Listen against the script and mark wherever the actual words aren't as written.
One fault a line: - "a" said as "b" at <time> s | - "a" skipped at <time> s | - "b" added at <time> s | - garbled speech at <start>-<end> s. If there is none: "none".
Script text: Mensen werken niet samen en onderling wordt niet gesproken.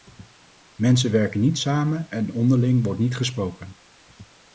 none